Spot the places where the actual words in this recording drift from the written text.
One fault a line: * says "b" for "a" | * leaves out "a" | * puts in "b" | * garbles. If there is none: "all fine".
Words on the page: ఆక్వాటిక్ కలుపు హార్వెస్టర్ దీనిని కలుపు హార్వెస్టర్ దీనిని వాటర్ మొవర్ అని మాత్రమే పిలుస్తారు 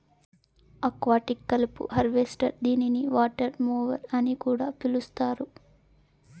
* leaves out "కలుపు హార్వెస్టర్ దీనిని"
* says "కూడా" for "మాత్రమే"